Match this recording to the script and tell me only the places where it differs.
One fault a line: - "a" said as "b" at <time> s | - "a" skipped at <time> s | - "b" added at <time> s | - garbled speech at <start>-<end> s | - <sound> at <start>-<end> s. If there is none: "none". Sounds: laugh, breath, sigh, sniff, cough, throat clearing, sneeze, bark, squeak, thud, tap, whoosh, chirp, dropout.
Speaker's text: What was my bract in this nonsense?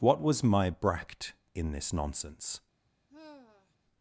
- sigh at 3.1-3.8 s